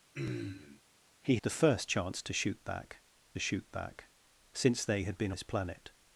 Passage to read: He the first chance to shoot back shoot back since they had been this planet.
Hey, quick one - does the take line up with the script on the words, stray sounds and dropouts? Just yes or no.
no